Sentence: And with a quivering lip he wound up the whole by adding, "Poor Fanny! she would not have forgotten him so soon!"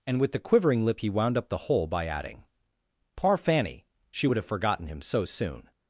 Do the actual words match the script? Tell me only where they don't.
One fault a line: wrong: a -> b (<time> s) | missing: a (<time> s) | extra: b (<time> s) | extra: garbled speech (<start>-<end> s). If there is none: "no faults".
wrong: a -> the (0.3 s)
missing: not (4.4 s)